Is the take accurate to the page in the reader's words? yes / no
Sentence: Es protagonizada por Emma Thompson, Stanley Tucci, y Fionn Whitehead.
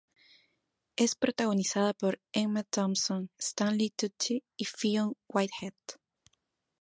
yes